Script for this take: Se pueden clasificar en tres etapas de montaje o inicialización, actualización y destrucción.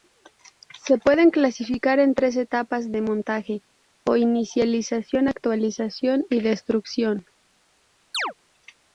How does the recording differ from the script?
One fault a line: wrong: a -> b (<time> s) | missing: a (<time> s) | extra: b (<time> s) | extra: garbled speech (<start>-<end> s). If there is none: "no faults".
no faults